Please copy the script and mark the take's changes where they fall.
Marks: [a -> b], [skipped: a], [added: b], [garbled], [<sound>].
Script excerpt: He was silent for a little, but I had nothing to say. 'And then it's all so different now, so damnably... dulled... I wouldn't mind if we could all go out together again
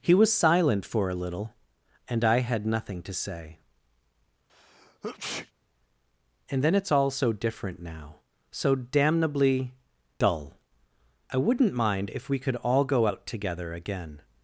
He was silent for a little, [but -> and] I had nothing to say. [sneeze] 'And then it's all so different now, so damnably... [dulled... -> dull] I wouldn't mind if we could all go out together again